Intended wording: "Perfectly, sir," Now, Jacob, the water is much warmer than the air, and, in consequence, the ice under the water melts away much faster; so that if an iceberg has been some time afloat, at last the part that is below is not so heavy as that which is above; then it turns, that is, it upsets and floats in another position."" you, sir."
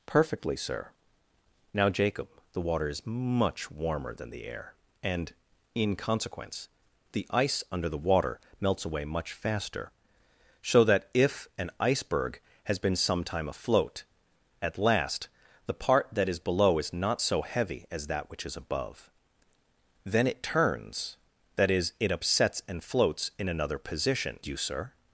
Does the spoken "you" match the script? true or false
true